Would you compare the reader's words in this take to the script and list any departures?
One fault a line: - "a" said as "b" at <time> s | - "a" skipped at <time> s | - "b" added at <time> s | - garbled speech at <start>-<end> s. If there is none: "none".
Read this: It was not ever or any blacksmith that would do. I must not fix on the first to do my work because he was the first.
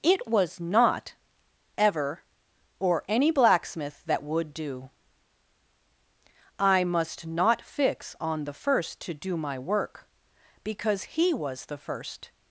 none